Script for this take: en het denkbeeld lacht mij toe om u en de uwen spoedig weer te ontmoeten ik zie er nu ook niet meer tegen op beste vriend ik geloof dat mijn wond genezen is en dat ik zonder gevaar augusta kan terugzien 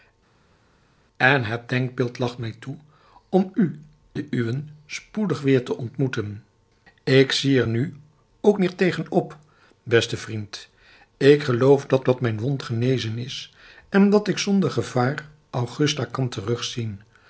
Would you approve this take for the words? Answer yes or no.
no